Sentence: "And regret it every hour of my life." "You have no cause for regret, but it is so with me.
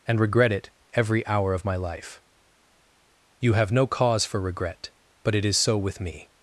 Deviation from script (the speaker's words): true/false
false